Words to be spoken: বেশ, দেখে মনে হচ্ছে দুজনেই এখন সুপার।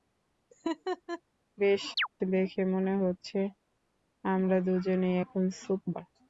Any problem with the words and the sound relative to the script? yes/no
yes